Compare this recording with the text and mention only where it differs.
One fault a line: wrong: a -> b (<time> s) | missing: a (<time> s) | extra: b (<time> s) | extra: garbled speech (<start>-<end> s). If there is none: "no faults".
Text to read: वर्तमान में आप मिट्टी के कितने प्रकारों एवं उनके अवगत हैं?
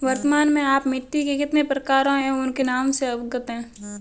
extra: नाम से (2.6 s)